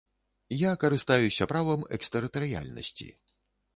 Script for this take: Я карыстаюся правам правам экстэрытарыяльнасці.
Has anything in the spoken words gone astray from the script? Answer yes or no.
yes